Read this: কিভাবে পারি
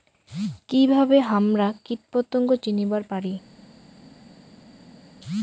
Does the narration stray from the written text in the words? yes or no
yes